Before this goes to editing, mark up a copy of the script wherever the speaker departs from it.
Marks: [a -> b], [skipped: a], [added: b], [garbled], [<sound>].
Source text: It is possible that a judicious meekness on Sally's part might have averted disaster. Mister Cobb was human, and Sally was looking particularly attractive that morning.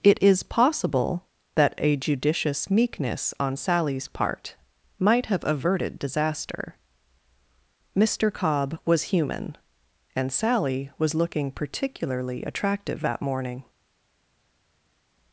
It is possible that a judicious meekness on Sally's part might have averted disaster. Mister Cobb was human, and Sally was looking particularly attractive that morning.